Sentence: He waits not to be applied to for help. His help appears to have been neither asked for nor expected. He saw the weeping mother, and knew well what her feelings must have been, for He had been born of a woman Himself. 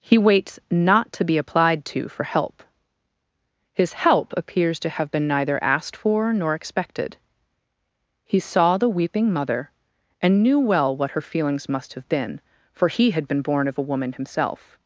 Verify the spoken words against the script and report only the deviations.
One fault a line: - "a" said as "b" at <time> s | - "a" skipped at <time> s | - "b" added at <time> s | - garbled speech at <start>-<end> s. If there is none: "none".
none